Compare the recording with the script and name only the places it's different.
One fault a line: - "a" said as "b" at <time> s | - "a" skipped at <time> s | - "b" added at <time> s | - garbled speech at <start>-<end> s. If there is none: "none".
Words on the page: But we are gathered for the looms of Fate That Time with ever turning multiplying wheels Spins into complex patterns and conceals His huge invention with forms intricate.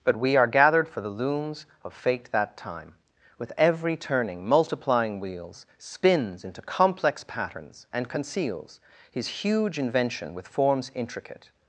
- "ever" said as "every" at 3.6 s